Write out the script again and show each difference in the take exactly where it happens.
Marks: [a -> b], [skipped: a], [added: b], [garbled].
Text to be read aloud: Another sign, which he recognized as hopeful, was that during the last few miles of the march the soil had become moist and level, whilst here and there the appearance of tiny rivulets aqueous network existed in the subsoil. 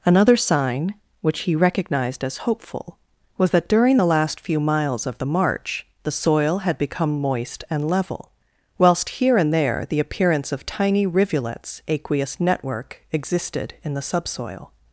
Another sign, which he recognized as hopeful, was that during the last few miles of the march the soil had become moist and level, whilst here and there the appearance of tiny rivulets aqueous network existed in the subsoil.